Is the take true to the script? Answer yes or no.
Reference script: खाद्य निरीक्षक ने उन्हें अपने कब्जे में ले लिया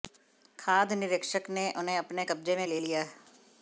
yes